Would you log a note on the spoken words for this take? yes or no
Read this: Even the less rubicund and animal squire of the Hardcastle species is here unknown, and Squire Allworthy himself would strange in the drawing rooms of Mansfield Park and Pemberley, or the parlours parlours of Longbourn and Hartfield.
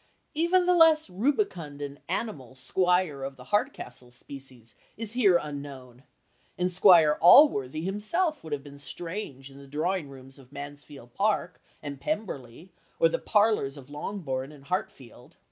yes